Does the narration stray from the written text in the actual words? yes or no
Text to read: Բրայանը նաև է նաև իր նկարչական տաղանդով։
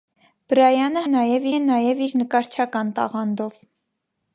no